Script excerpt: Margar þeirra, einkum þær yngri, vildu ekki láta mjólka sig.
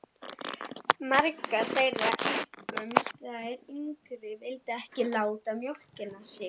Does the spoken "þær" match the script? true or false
true